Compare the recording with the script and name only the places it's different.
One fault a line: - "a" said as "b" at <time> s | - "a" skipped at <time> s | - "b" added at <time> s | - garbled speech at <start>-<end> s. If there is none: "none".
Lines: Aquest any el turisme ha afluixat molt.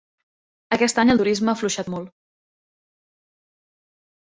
none